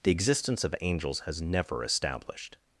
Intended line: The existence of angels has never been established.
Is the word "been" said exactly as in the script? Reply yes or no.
no